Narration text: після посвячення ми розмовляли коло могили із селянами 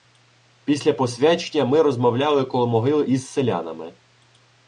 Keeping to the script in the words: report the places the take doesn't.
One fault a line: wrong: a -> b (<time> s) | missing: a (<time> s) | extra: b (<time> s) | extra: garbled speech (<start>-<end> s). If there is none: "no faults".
no faults